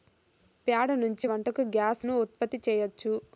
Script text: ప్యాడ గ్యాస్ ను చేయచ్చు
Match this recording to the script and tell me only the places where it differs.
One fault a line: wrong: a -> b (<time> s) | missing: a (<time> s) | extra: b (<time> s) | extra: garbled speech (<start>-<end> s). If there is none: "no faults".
extra: నుంచి వంటకు (1.0 s)
extra: ఉత్పత్తి (2.2 s)